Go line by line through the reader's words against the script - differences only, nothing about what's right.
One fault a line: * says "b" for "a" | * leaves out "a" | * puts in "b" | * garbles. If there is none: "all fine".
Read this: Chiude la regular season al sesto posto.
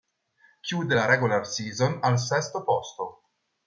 all fine